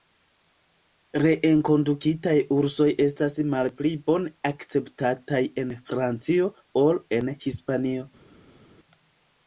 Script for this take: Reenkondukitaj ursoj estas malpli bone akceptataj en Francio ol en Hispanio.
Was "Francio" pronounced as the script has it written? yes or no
yes